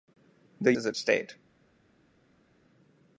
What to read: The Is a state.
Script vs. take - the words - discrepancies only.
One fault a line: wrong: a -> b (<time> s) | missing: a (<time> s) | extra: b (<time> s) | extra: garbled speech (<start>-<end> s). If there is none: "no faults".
no faults